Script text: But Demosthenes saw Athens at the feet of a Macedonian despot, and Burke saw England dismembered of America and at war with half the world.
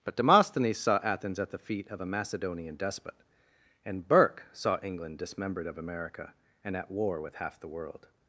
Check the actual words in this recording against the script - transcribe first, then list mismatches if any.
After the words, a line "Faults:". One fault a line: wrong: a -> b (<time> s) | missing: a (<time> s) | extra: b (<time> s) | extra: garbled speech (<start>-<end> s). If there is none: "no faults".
But Demosthenes saw Athens at the feet of a Macedonian despot, and Burke saw England dismembered of America and at war with half the world.
Faults:
no faults